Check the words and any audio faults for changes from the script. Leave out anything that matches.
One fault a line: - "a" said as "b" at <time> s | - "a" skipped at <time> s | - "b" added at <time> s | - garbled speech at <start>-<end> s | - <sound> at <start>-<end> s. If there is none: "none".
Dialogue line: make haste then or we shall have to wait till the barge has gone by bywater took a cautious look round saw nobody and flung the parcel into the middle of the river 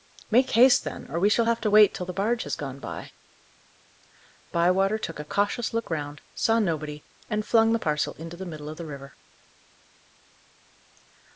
none